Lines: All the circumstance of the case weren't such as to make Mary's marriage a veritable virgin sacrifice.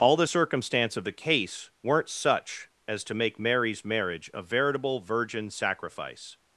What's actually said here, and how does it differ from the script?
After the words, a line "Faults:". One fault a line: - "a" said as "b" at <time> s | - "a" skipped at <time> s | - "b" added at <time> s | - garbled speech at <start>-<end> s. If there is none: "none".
All the circumstance of the case weren't such as to make Mary's marriage a veritable virgin sacrifice.
Faults:
none